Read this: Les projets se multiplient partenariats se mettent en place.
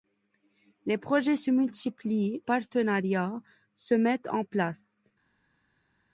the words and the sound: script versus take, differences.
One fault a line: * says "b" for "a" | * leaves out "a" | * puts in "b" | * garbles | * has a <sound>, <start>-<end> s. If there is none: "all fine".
all fine